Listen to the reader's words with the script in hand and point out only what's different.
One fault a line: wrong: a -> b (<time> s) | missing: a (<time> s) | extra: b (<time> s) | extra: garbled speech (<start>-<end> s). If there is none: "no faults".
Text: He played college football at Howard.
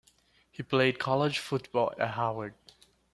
no faults